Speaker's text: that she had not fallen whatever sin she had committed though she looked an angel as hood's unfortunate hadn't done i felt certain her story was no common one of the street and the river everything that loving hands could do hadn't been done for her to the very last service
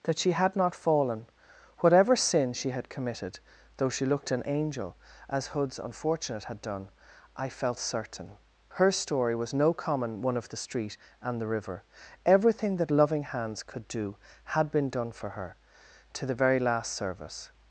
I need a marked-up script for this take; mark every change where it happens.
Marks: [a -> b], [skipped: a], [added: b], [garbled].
that she had not fallen whatever sin she had committed though she looked an angel as hood's unfortunate [hadn't -> had] done i felt certain her story was no common one of the street and the river everything that loving hands could do [hadn't -> had] been done for her to the very last service